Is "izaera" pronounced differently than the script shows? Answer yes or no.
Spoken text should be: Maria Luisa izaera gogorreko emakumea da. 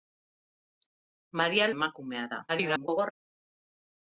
yes